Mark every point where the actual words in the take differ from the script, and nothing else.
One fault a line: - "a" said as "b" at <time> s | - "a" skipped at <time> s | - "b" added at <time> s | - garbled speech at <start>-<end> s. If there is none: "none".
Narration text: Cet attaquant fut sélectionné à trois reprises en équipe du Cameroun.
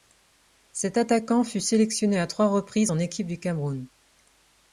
none